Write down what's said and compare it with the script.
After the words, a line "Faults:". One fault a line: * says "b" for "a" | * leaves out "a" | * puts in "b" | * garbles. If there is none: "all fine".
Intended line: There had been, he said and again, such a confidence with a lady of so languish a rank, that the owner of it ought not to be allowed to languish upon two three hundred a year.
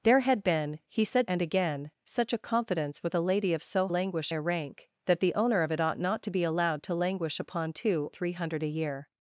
There had been, he said and again, such a confidence with a lady of so languish a rank, that the owner of it ought not to be allowed to languish upon two three hundred a year.
Faults:
all fine